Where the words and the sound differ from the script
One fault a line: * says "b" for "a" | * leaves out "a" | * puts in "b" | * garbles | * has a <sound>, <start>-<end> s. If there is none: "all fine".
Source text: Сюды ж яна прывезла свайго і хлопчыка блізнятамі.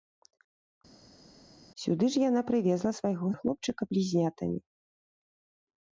all fine